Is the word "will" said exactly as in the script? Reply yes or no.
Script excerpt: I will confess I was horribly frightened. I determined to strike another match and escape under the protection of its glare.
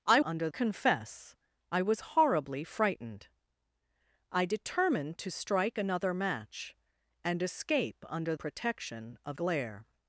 no